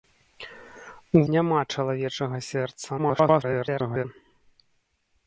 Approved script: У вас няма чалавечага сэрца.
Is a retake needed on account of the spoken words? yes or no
yes